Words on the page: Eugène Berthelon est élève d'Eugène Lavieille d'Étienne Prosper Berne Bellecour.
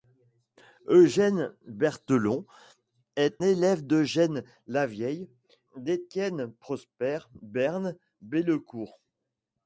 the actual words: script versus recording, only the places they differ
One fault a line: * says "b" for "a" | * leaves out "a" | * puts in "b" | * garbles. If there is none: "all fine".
all fine